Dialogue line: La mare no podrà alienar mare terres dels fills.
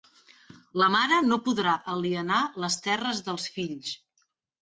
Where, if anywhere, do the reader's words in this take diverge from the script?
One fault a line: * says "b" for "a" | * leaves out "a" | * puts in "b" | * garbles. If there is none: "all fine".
* says "les" for "mare"